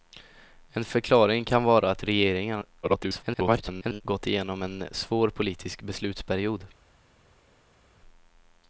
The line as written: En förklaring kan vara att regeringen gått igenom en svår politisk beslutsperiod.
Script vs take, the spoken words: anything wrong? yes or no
yes